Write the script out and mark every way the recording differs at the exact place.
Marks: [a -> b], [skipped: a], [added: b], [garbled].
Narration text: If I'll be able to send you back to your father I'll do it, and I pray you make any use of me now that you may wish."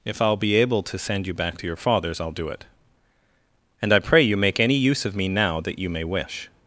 If I'll be able to send you back to your [father -> fathers] I'll do it, and I pray you make any use of me now that you may wish."